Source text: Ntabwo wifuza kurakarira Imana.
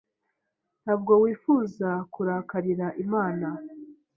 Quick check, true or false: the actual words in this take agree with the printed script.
true